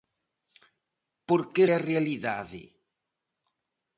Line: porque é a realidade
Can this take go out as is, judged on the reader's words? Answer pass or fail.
pass